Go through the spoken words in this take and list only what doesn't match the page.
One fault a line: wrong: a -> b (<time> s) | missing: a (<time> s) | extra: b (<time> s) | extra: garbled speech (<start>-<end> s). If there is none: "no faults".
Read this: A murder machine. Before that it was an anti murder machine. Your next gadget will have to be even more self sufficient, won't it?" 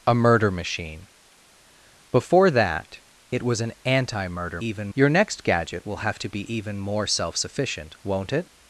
wrong: machine -> even (4.6 s)